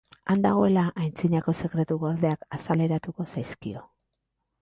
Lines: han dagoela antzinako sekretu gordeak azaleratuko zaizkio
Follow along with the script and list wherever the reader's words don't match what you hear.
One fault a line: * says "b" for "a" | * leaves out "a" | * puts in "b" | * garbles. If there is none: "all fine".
all fine